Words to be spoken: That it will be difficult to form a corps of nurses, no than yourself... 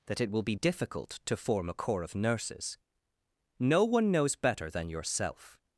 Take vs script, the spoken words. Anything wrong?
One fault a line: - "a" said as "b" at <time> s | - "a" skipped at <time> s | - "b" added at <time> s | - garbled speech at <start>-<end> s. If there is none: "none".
- "one knows better" added at 3.8 s